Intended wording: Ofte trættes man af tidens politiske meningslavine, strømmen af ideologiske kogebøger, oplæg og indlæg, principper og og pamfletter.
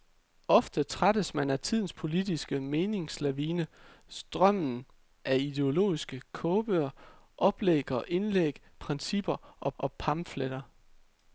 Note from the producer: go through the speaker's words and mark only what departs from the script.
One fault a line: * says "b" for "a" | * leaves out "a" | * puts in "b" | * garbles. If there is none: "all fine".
all fine